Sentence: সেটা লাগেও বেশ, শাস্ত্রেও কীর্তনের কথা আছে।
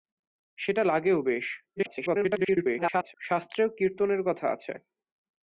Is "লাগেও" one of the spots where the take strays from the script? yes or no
no